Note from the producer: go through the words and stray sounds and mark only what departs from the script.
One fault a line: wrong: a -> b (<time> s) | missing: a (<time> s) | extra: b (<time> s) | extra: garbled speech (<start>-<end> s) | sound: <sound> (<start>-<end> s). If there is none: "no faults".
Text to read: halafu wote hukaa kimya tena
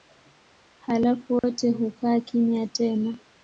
sound: dropout (1.4-1.4 s)